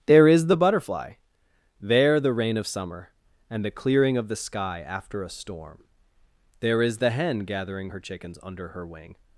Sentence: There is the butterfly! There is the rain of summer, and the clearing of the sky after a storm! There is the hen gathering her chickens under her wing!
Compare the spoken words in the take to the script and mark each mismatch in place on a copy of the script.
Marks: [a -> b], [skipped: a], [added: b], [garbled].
There is the butterfly! There [skipped: is] the rain of summer, and the clearing of the sky after a storm! There is the hen gathering her chickens under her wing!